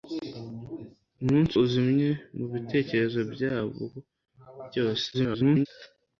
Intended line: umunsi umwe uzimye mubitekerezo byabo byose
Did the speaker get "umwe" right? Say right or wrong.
wrong